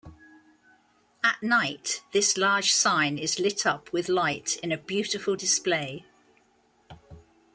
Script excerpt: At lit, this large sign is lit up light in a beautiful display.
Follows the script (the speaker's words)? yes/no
no